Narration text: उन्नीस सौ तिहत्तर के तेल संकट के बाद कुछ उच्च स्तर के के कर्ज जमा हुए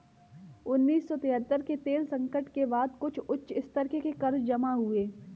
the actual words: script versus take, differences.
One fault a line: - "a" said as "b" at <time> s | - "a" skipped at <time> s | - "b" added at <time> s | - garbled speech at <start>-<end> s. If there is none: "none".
none